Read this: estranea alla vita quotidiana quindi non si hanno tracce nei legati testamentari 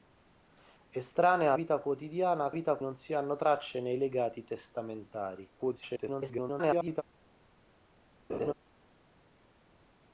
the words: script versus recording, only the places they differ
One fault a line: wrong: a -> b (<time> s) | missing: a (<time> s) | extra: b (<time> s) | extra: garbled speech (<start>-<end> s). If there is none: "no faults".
missing: alla (1.5 s)
wrong: quindi -> vita (2.5 s)
extra: garbled speech (5.6-7.0 s)